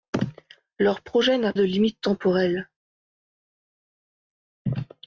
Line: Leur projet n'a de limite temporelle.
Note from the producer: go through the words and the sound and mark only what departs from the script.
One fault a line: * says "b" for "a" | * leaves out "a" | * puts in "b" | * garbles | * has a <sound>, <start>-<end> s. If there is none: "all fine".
all fine